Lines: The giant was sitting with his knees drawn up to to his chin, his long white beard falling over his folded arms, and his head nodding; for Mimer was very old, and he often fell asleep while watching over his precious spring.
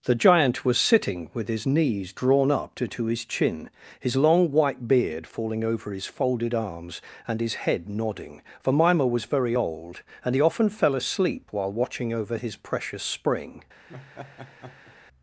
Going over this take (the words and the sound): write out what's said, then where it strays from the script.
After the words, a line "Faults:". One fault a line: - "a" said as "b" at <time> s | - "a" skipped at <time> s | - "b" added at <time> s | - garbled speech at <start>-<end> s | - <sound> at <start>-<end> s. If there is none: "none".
The giant was sitting with his knees drawn up to to his chin, his long white beard falling over his folded arms, and his head nodding; for Mimer was very old, and he often fell asleep while watching over his precious spring.
Faults:
- laugh at 13.9-15.0 s